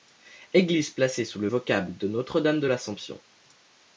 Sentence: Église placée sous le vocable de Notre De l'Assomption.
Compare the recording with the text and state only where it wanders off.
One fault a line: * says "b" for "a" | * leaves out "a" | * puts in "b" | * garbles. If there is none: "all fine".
* puts in "Dame"